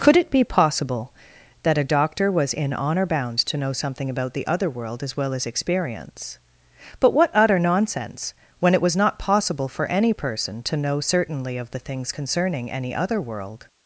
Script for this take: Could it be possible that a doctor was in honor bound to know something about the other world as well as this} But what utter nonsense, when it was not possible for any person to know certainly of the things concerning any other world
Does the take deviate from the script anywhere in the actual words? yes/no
yes